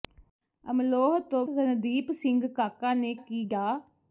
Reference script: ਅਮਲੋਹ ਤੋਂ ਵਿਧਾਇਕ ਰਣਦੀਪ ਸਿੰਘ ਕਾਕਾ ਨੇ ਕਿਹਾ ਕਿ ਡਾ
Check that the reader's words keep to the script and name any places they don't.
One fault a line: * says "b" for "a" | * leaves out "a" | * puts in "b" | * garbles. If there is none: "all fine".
* leaves out "ਵਿਧਾਇਕ"
* leaves out "ਕਿਹਾ"